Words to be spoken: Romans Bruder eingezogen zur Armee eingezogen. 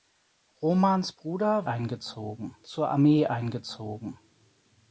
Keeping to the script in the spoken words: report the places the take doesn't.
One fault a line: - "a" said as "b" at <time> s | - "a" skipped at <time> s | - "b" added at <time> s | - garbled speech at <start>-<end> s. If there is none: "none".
none